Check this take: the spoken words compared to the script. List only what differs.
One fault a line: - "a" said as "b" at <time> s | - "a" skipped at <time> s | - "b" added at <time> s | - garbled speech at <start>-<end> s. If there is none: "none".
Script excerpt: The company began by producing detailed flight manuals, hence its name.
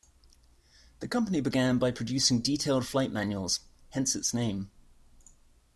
none